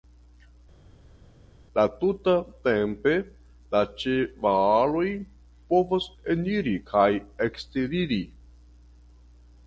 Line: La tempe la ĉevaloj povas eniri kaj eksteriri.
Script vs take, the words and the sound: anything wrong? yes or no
yes